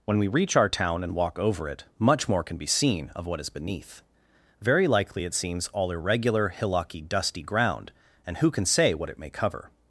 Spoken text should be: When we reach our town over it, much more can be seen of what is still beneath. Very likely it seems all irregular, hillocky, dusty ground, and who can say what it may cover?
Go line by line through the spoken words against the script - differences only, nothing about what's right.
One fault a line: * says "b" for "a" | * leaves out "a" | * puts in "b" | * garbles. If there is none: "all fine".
* puts in "and walk"
* leaves out "still"